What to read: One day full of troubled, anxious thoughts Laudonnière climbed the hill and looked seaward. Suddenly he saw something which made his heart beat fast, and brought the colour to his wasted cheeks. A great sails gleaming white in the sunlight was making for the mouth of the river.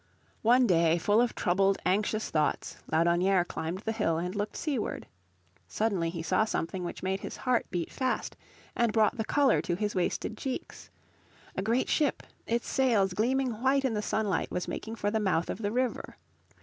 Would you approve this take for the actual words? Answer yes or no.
no